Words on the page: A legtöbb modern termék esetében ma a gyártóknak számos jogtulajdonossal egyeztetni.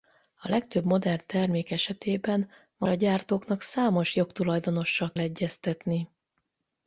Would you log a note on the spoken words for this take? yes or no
no